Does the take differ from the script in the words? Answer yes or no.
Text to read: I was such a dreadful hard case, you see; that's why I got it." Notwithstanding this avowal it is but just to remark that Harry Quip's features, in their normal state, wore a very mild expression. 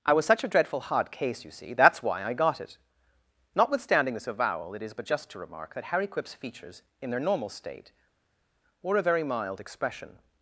no